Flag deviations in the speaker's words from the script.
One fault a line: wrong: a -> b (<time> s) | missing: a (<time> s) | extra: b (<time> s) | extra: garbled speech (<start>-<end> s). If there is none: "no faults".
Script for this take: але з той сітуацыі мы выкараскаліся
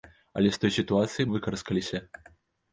missing: мы (1.3 s)